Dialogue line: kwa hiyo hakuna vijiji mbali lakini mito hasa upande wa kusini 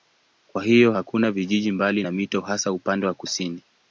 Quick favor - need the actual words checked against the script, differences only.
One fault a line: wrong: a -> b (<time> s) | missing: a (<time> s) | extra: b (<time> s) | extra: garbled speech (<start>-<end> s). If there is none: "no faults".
wrong: lakini -> na (2.0 s)